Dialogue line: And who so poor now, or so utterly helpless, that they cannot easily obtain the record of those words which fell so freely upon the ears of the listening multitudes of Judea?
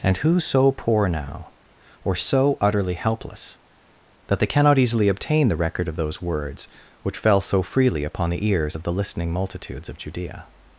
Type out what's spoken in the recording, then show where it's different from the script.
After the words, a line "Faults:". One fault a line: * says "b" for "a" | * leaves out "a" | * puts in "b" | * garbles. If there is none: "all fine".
And who so poor now, or so utterly helpless, that they cannot easily obtain the record of those words which fell so freely upon the ears of the listening multitudes of Judea?
Faults:
all fine